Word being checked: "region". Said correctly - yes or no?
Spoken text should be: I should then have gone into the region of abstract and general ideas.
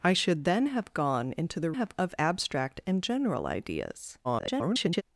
no